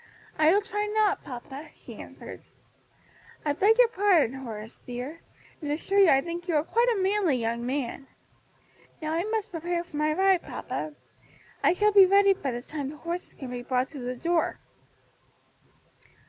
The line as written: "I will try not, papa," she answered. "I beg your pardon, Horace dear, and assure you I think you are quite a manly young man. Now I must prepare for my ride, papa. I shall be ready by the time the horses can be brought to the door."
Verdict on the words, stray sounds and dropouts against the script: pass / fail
pass